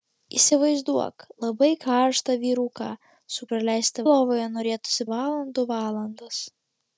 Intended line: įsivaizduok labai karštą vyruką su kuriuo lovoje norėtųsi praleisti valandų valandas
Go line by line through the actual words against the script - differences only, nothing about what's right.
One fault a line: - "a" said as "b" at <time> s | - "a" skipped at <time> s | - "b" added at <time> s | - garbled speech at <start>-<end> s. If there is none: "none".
- "kuriuo" said as "praleisti" at 3.5 s
- "praleisti" skipped at 5.1 s